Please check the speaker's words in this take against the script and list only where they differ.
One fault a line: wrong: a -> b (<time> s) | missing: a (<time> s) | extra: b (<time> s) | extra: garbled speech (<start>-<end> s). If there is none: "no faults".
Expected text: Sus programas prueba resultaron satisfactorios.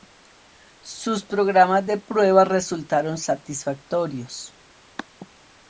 extra: de (1.8 s)